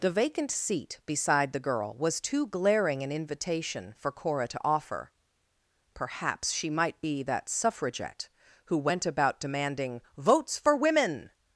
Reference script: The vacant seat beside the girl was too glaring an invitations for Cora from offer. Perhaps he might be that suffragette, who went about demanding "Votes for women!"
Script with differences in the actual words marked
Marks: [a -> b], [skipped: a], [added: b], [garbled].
The vacant seat beside the girl was too glaring an [invitations -> invitation] for Cora [from -> to] offer. Perhaps [he -> she] might be that suffragette, who went about demanding "Votes for women!"